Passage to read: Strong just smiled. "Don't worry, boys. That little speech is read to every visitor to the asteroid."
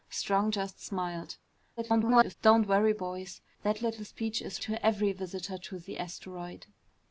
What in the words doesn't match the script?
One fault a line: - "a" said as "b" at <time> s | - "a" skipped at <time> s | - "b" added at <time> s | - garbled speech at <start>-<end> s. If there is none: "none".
- garbled speech at 1.8-2.3 s
- "read" skipped at 4.6 s